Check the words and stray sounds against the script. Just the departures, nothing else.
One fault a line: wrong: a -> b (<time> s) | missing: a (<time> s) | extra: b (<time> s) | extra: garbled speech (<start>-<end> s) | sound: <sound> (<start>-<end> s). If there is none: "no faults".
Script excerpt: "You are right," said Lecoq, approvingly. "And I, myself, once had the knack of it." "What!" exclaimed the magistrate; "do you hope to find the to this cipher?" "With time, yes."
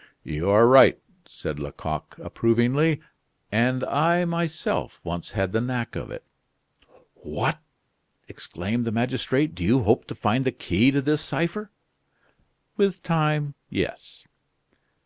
extra: key (10.5 s)